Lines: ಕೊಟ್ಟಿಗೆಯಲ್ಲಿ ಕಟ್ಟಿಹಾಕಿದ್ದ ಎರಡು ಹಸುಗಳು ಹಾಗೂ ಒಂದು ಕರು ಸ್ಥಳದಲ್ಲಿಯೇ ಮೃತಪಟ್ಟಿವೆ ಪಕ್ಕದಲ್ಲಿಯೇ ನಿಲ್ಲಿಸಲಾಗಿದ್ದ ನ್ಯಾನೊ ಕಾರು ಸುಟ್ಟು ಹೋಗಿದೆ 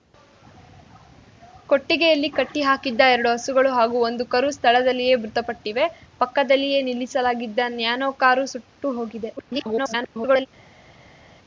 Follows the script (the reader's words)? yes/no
no